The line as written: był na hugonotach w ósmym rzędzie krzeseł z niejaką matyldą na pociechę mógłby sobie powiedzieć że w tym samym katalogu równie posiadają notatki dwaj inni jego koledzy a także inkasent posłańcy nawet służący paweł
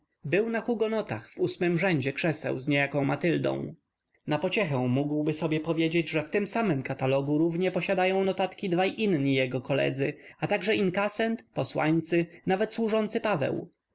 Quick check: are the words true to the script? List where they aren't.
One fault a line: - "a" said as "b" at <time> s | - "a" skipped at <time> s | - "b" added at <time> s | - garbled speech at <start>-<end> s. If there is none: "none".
none